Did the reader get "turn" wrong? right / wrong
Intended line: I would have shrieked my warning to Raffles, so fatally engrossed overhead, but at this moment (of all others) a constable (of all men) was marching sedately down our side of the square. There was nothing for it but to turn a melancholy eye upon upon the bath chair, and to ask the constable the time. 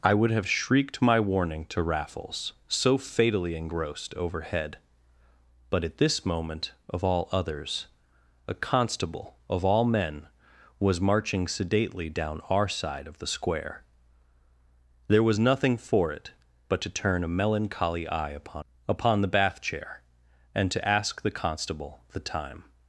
right